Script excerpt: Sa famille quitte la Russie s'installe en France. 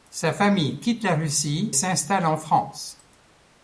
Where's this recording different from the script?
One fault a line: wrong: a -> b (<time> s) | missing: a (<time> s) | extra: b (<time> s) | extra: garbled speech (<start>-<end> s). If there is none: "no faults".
no faults